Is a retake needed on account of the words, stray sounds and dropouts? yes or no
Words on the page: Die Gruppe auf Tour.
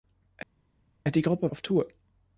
no